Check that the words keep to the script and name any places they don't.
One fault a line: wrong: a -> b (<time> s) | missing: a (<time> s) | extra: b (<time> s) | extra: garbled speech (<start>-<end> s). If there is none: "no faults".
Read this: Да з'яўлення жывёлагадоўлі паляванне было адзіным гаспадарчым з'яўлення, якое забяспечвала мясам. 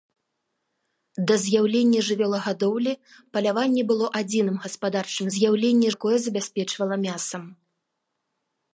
no faults